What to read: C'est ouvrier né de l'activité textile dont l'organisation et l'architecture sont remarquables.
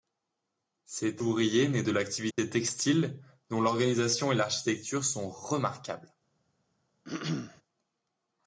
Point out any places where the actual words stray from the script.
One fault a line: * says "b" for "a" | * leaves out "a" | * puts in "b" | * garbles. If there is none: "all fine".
all fine